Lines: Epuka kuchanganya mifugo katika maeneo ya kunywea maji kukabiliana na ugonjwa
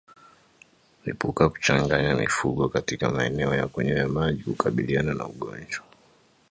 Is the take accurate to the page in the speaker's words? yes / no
yes